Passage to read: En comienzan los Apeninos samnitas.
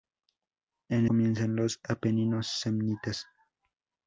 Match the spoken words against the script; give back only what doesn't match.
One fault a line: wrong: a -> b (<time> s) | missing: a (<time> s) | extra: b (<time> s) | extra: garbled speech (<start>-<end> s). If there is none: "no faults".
no faults